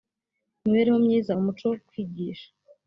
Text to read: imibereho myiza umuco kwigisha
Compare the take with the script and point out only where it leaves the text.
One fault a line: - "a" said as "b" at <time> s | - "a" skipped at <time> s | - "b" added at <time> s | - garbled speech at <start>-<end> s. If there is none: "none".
none